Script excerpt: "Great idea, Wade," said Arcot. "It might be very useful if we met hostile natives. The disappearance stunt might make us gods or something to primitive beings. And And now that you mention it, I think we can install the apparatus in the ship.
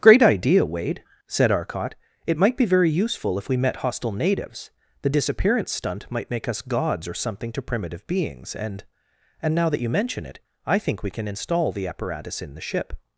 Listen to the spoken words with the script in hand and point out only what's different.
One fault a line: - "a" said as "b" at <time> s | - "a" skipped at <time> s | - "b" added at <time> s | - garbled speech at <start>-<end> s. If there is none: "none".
none